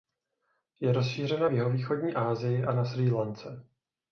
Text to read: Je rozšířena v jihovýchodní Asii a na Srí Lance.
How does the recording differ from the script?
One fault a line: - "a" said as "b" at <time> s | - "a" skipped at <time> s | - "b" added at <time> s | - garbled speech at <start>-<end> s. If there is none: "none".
none